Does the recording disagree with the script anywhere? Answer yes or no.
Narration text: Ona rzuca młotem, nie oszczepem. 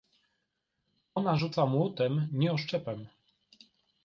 no